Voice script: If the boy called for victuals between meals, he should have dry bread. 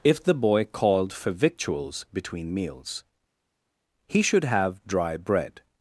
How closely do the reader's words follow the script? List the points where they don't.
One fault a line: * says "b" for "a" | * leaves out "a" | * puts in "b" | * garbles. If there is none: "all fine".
all fine